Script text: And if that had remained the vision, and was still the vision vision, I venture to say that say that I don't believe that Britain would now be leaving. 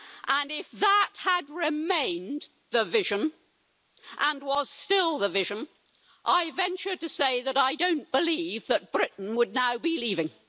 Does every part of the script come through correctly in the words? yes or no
no